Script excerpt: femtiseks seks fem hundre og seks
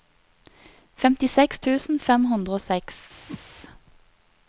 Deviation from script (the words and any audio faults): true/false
true